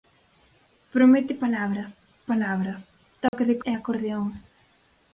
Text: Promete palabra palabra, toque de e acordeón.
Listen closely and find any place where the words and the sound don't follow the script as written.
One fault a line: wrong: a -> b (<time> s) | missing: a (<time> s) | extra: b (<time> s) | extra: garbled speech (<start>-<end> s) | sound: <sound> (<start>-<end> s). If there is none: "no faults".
sound: dropout (3.3-3.3 s)